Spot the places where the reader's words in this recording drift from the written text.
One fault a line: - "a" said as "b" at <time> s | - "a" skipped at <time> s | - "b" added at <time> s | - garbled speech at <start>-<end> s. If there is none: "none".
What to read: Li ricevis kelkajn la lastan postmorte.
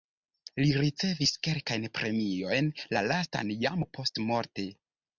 - "premiojn" added at 2.0 s
- "jam" added at 3.7 s